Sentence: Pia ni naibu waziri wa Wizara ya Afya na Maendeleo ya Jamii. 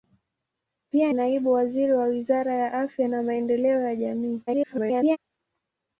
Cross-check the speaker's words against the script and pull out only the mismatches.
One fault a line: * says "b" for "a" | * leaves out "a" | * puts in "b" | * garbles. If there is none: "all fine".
* leaves out "ni"
* garbles